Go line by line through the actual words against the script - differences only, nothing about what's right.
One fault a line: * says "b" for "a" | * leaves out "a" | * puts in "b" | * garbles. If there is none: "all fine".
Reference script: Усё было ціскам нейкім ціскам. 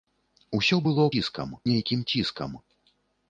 all fine